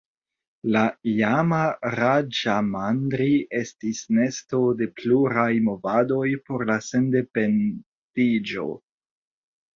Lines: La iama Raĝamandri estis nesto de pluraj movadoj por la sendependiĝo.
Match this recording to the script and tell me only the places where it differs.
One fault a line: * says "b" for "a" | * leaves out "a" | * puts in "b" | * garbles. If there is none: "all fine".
all fine